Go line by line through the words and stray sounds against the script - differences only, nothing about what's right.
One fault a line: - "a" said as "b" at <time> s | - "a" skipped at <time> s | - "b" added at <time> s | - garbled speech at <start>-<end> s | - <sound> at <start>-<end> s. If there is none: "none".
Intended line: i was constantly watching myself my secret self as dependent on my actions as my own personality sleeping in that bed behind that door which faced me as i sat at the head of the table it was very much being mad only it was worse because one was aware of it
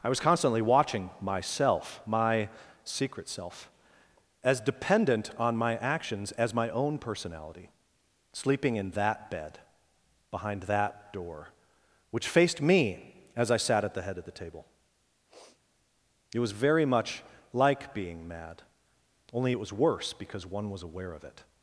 - sniff at 15.3-15.6 s
- "like" added at 17.5 s